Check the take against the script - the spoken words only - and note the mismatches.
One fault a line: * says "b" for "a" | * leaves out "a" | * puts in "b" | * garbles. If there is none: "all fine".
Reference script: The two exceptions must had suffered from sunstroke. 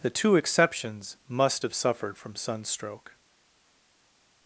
* says "have" for "had"